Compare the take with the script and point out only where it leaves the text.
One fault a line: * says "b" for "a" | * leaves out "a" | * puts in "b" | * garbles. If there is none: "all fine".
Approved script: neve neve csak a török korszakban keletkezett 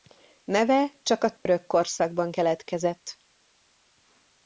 * leaves out "neve"